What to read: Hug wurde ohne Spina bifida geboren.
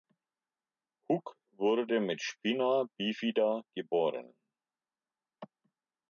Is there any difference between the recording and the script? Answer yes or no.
yes